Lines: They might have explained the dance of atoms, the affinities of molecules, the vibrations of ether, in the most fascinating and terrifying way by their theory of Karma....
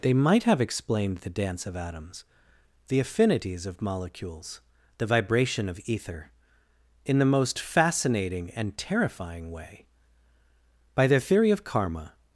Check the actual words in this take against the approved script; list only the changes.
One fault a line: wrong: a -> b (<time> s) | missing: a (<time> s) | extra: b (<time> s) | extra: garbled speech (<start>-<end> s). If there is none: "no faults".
wrong: vibrations -> vibration (5.0 s)